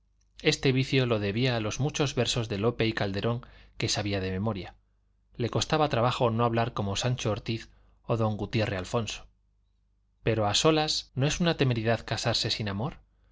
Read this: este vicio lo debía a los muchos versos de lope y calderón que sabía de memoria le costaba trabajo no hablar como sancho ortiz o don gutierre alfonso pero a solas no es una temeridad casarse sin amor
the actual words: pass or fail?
pass